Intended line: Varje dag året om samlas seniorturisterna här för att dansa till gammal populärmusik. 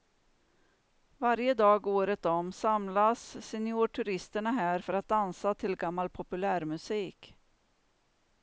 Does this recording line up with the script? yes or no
yes